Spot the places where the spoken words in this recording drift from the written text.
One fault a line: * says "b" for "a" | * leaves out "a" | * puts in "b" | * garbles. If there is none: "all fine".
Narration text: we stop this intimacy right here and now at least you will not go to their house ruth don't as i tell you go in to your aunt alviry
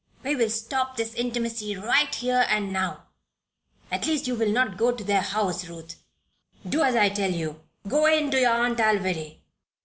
* puts in "will"
* says "do" for "don't"